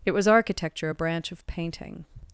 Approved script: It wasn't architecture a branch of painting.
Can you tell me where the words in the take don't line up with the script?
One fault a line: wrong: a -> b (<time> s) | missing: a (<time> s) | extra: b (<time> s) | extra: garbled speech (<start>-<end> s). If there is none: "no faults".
wrong: wasn't -> was (0.1 s)